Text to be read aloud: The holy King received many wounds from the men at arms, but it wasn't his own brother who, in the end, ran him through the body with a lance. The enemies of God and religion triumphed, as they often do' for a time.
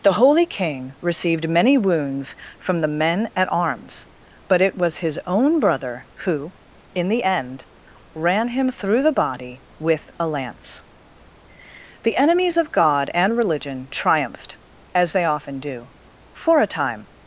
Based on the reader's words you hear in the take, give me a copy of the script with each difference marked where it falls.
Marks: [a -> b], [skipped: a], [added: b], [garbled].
The holy King received many wounds from the men at arms, but it [wasn't -> was] his own brother who, in the end, ran him through the body with a lance. The enemies of God and religion triumphed, as they often do' for a time.